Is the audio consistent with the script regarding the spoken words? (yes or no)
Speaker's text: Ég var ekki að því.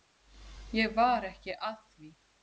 yes